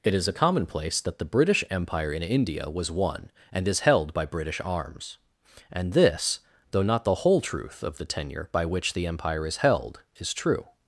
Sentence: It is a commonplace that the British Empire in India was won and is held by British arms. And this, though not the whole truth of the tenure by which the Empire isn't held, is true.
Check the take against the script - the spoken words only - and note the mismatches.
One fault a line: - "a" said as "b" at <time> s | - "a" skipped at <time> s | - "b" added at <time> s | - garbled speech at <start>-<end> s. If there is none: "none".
- "isn't" said as "is" at 9.4 s